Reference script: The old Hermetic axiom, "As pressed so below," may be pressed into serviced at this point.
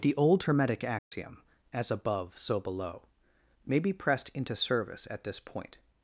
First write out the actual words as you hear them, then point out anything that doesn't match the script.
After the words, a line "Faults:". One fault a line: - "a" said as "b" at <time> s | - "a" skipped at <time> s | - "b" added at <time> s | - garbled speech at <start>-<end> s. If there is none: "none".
The old Hermetic axiom, "As above so below," may be pressed into service at this point.
Faults:
- "pressed" said as "above" at 1.9 s
- "serviced" said as "service" at 4.6 s